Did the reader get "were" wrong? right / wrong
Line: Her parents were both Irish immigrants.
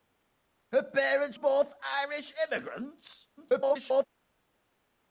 wrong